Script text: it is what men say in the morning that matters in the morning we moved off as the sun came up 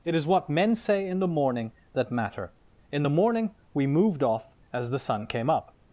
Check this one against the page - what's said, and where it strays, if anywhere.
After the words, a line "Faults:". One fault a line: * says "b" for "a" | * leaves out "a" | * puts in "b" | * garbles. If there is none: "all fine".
it is what men say in the morning that matter in the morning we moved off as the sun came up
Faults:
* says "matter" for "matters"